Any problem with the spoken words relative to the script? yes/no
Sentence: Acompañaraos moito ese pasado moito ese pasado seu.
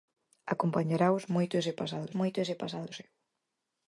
no